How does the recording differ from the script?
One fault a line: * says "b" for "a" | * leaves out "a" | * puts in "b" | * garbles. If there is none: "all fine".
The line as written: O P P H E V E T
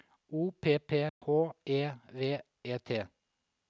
all fine